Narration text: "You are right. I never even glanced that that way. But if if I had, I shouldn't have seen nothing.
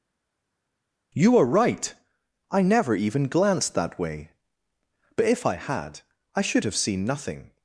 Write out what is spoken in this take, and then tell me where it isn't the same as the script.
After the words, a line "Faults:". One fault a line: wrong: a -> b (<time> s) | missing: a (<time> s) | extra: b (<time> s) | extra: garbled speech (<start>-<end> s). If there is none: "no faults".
"You are right. I never even glanced that way. But if I had, I should have seen nothing.
Faults:
missing: that (4.0 s)
missing: if (5.5 s)
wrong: shouldn't -> should (6.4 s)